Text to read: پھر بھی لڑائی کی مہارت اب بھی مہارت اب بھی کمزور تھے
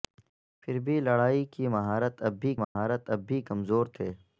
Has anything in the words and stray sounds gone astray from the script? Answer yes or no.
yes